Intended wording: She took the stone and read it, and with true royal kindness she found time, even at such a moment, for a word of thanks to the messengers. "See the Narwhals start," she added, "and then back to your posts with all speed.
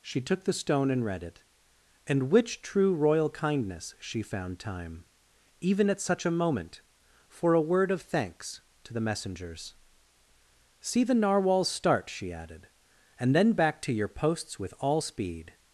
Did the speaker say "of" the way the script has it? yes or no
yes